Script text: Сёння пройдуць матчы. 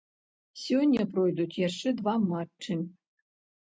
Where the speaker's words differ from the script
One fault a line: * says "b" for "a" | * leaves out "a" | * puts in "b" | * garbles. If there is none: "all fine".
* puts in "яшчэ два"